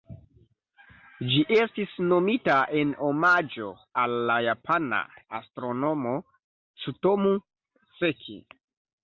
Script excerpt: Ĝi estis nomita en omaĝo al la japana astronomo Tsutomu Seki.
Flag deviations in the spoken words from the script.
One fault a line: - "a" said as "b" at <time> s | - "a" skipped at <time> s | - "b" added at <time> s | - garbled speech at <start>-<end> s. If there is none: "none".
none